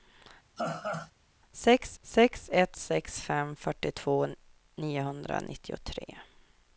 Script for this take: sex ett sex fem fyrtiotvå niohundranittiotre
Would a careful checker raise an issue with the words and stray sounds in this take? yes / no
yes